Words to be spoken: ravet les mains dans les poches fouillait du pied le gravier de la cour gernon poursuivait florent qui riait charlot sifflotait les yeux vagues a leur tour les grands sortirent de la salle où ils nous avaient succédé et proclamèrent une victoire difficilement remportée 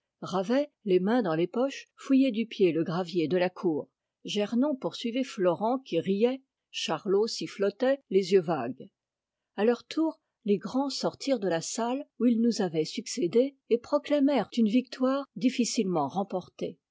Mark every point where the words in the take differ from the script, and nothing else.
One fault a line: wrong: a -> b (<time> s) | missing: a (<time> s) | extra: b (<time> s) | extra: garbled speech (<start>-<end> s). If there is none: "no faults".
no faults